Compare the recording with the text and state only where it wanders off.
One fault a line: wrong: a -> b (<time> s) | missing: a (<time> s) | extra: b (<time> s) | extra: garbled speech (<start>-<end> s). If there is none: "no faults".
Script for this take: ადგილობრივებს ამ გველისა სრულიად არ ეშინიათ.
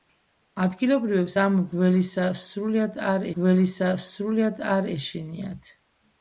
extra: გველისა სრულიად არ (3.4 s)